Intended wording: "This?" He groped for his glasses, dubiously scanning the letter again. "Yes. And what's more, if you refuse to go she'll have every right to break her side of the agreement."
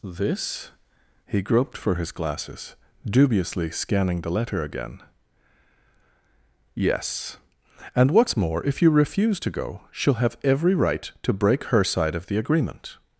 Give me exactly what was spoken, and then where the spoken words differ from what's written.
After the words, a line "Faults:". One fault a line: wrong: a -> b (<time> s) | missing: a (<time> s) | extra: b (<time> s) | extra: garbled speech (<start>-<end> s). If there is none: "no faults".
"This?" He groped for his glasses, dubiously scanning the letter again. "Yes. And what's more, if you refuse to go she'll have every right to break her side of the agreement."
Faults:
no faults